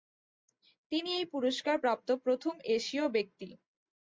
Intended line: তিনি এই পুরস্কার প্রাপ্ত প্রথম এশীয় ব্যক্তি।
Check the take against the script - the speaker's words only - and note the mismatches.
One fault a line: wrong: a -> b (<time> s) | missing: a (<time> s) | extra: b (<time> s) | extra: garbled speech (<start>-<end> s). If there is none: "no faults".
no faults